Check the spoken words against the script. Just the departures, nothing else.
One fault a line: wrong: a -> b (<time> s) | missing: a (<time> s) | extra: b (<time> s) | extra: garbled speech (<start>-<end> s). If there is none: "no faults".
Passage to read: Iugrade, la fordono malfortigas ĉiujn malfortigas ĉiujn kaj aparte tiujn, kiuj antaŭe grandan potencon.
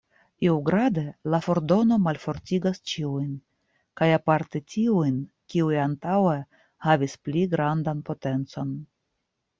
missing: malfortigas ĉiujn (3.3 s)
extra: havis pli (6.9 s)